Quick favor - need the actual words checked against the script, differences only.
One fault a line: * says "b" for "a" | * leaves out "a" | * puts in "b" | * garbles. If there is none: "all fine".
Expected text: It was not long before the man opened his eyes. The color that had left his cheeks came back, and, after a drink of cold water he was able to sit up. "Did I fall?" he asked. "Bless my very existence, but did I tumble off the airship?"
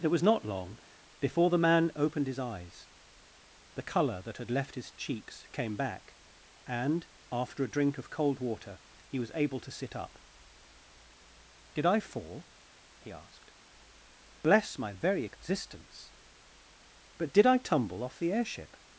all fine